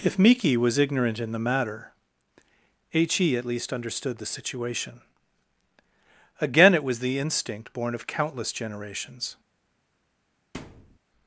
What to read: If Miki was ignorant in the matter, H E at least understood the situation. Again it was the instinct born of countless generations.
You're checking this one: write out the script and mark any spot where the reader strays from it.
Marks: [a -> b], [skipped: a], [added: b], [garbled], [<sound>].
If Miki was ignorant in the matter, H E at least understood the situation. Again it was the instinct born of countless generations. [thud]